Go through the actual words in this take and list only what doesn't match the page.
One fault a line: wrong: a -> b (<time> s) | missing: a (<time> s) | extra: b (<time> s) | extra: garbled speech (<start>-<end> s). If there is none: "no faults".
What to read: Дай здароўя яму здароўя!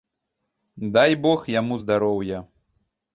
wrong: здароўя -> бог (1.2 s)